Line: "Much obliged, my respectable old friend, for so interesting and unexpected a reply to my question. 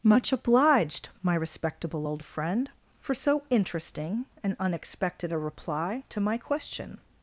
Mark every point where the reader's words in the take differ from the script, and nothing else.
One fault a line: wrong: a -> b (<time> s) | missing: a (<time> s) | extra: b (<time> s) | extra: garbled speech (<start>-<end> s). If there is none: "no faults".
no faults